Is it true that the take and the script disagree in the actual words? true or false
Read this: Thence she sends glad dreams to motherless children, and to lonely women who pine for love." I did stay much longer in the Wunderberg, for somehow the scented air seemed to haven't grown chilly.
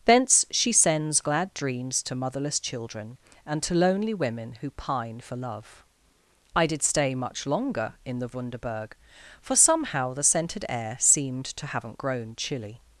false